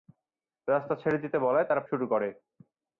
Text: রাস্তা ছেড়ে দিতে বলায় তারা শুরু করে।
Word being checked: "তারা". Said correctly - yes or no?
yes